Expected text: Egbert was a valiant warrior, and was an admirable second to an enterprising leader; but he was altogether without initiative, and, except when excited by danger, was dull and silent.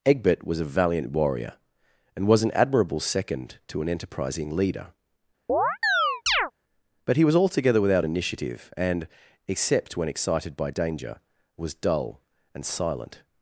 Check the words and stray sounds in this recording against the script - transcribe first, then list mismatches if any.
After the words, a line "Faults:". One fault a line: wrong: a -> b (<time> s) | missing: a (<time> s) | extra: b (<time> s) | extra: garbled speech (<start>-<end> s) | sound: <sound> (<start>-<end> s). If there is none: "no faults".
Egbert was a valiant warrior, and was an admirable second to an enterprising leader; but he was altogether without initiative, and, except when excited by danger, was dull and silent.
Faults:
sound: chirp (5.5-6.5 s)